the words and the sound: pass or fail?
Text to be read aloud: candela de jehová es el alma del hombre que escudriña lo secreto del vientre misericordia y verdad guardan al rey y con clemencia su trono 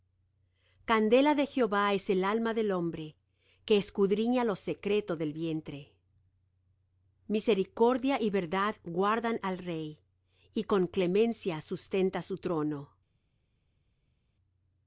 fail